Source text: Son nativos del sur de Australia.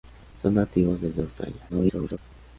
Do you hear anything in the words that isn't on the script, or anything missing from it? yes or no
yes